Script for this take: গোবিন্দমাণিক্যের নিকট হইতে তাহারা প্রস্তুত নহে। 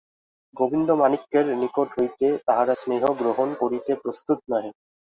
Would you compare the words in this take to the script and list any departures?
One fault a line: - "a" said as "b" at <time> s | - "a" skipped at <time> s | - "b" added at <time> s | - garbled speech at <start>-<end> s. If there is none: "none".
- "স্নেহ গ্রহণ করিতে" added at 2.7 s